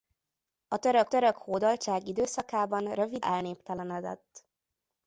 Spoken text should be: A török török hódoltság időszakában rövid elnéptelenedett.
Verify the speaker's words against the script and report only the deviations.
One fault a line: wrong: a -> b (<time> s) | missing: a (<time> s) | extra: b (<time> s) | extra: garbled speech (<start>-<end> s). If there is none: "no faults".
no faults